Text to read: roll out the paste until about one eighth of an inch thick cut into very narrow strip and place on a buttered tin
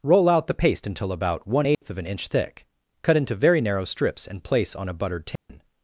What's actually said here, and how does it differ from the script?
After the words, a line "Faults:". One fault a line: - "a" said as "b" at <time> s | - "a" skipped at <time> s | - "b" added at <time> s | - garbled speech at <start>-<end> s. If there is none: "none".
roll out the paste until about one eighth of an inch thick cut into very narrow strips and place on a buttered tin
Faults:
- "strip" said as "strips" at 3.8 s